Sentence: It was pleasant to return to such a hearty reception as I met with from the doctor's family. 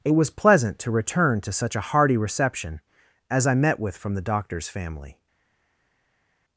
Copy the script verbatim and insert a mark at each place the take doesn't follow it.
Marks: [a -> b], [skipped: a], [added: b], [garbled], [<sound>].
It was pleasant to return to such a hearty reception as I met with from the doctor's family.